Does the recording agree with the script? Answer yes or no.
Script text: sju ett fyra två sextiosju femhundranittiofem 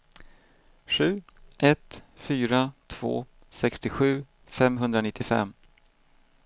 yes